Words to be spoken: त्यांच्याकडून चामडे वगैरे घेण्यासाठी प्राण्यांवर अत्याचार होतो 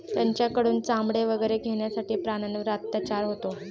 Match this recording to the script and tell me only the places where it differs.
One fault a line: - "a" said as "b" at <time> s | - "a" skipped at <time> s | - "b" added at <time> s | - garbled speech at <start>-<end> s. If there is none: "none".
none